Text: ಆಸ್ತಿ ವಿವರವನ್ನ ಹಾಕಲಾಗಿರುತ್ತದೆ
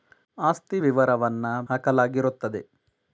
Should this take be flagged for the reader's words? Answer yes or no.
no